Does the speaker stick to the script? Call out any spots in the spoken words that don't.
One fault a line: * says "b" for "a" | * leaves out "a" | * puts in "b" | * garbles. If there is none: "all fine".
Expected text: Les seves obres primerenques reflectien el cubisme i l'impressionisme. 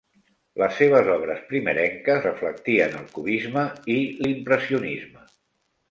all fine